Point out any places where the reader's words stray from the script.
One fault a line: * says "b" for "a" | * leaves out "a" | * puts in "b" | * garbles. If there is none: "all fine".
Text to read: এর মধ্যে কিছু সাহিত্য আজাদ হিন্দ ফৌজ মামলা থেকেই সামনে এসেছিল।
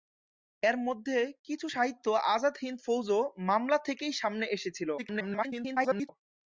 * garbles